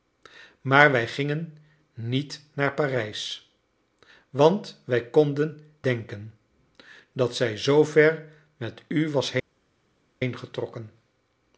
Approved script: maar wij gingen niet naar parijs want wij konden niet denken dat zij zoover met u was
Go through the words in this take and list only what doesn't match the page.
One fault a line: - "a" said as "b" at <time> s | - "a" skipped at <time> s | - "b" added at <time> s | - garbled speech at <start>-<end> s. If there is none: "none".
- "niet" skipped at 5.7 s